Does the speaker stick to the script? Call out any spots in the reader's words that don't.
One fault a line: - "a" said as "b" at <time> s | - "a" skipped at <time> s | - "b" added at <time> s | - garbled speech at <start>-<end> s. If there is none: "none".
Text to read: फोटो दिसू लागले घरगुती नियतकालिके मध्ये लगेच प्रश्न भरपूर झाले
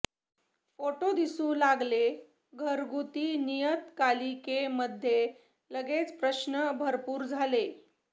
none